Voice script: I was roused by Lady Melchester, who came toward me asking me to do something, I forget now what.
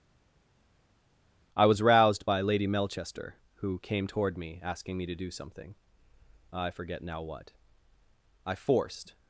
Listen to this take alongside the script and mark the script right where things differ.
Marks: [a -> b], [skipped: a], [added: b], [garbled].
I was roused by Lady Melchester, who came toward me asking me to do something, I forget now what. [added: I forced]